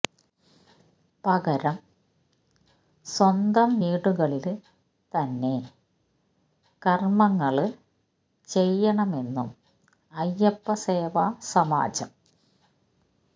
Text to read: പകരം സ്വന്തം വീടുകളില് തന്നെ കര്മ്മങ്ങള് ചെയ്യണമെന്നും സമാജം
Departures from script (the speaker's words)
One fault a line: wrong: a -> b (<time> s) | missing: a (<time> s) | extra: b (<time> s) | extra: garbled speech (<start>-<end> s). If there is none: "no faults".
extra: അയ്യപ്പ സേവാ (10.1 s)